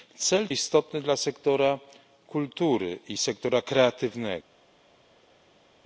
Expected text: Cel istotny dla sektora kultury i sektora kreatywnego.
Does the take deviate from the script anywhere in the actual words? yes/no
no